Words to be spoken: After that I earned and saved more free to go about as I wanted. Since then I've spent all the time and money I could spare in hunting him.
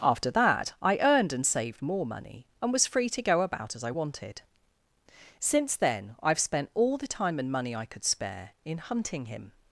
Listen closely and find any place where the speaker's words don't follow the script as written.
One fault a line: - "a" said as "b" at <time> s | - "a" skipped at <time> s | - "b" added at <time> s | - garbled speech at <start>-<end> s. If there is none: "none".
- "money and was" added at 2.0 s